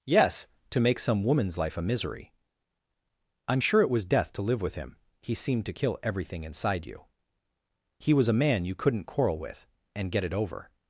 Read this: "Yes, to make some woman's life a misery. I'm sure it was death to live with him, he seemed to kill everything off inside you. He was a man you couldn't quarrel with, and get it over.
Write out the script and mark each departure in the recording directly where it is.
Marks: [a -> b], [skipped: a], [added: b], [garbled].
"Yes, to make some woman's life a misery. I'm sure it was death to live with him, he seemed to kill everything [skipped: off] inside you. He was a man you couldn't quarrel with, and get it over.